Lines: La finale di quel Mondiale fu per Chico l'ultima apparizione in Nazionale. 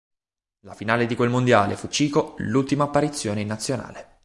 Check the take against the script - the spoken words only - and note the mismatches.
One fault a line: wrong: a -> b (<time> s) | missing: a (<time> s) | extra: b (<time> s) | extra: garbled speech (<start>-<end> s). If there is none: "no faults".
missing: per (1.9 s)